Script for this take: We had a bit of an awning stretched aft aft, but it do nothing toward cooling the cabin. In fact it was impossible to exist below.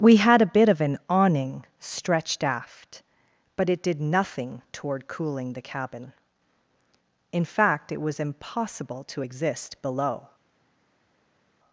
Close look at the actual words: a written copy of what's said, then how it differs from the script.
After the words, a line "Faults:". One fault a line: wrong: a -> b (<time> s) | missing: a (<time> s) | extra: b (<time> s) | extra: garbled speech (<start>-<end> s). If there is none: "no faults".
We had a bit of an awning stretched aft, but it did nothing toward cooling the cabin. In fact it was impossible to exist below.
Faults:
missing: aft (3.0 s)
wrong: do -> did (3.8 s)